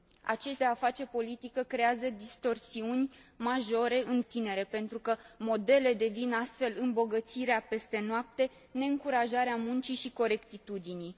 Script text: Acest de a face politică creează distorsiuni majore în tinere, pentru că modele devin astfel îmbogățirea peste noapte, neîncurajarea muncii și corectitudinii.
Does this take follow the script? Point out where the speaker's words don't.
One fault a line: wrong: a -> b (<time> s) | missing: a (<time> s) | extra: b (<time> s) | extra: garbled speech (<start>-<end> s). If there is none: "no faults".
no faults